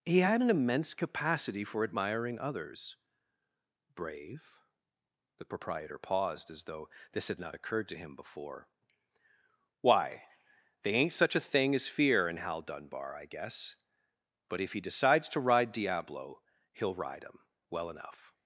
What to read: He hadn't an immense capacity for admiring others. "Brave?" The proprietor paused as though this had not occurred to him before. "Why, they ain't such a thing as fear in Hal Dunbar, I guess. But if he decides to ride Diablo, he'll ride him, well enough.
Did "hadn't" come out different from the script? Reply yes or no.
yes